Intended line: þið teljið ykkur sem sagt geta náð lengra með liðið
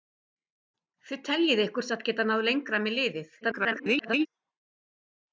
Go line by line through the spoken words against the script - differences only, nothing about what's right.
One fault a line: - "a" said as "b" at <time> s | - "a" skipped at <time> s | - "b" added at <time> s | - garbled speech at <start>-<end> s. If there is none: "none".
- "sem" skipped at 1.9 s
- garbled speech at 3.4-4.3 s